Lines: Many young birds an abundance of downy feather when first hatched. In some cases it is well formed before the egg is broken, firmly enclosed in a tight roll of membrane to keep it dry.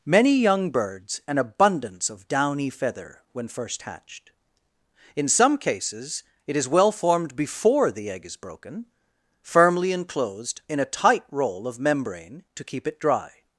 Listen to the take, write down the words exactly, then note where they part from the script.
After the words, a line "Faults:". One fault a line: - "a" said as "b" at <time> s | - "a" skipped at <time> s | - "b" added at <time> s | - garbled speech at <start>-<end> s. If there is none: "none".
Many young birds an abundance of downy feather when first hatched. In some cases it is well formed before the egg is broken, firmly enclosed in a tight roll of membrane to keep it dry.
Faults:
none